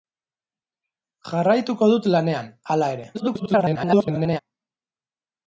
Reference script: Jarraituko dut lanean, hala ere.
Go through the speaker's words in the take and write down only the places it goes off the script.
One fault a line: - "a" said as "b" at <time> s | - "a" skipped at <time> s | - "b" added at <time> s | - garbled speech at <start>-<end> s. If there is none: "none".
- garbled speech at 3.1-4.4 s